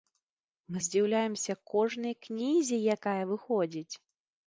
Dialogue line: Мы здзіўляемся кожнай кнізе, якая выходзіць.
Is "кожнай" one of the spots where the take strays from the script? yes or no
no